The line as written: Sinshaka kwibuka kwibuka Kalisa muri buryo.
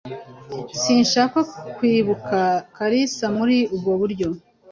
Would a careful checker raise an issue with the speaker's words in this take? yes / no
yes